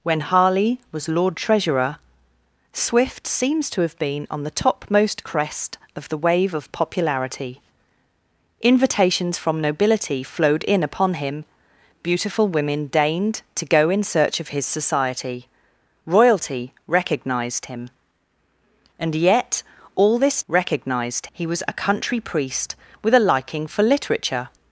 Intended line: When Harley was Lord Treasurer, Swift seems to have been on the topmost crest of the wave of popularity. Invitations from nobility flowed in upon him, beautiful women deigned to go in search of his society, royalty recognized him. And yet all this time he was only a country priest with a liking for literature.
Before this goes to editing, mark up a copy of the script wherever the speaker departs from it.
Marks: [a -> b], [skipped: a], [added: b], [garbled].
When Harley was Lord Treasurer, Swift seems to have been on the topmost crest of the wave of popularity. Invitations from nobility flowed in upon him, beautiful women deigned to go in search of his society, royalty recognized him. And yet all this [time -> recognized] he was [skipped: only] a country priest with a liking for literature.